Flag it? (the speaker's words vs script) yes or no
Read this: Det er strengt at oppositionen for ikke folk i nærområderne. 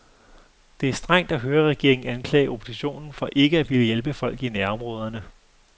yes